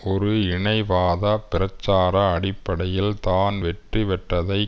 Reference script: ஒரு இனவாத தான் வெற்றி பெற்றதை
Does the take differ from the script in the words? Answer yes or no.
yes